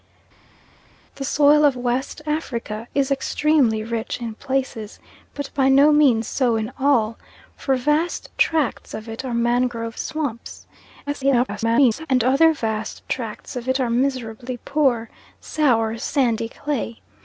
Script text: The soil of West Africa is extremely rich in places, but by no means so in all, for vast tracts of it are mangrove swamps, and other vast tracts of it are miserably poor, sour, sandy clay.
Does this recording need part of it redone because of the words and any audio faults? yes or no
yes